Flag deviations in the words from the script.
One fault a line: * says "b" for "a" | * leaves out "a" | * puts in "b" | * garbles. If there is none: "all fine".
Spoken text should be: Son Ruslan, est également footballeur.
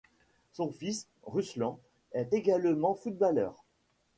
* puts in "fils"